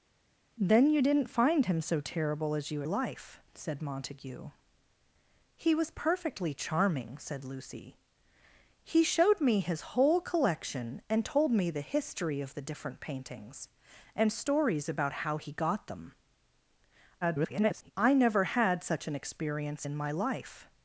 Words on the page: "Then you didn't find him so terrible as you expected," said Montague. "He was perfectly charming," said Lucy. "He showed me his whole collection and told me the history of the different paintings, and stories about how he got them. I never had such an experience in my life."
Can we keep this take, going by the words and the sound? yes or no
no